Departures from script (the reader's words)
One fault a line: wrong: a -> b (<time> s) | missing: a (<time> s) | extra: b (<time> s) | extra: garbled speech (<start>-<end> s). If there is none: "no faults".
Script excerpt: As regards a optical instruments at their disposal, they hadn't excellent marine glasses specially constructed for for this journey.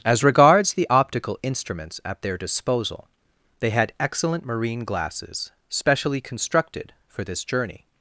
wrong: a -> the (0.7 s)
wrong: hadn't -> had (3.7 s)
missing: for (7.2 s)